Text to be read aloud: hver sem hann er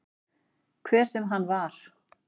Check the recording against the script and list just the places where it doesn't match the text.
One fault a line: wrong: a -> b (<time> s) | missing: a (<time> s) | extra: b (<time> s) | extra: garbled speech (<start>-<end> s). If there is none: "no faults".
wrong: er -> var (1.5 s)